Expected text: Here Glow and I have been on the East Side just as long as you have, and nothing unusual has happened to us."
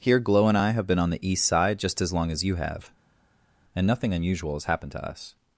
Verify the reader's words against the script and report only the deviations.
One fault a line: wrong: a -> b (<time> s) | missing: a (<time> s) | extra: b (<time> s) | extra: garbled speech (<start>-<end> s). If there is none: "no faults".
no faults